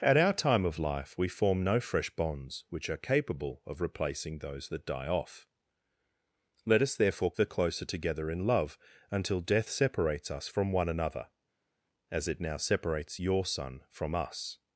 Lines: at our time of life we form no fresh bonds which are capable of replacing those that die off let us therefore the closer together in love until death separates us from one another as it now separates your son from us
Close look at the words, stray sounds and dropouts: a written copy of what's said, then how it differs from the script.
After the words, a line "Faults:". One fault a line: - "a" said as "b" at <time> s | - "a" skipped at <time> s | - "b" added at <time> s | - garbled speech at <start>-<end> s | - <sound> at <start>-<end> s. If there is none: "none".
at our time of life we form no fresh bonds which are capable of replacing those that die off let us therefore the closer together in love until death separates us from one another as it now separates your son from us
Faults:
none